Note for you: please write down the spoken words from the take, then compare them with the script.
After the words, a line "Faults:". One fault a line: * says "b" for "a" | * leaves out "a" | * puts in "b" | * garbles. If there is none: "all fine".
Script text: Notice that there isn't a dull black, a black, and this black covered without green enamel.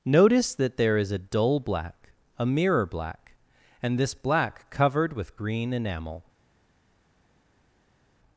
Notice that there is a dull black, a mirror black, and this black covered with green enamel.
Faults:
* says "is" for "isn't"
* puts in "mirror"
* says "with" for "without"